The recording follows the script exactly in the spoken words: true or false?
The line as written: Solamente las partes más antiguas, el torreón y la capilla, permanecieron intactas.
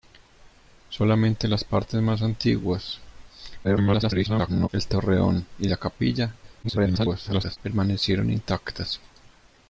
false